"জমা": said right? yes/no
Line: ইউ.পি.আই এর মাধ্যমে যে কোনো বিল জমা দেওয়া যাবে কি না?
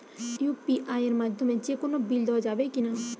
no